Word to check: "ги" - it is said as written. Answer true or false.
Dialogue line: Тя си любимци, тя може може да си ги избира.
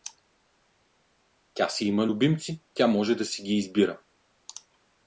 true